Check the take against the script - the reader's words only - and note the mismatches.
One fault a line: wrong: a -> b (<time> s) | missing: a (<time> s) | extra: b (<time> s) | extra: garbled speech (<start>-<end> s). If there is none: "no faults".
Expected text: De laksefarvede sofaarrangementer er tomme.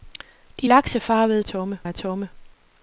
wrong: sofaarrangementer -> tomme (1.4 s)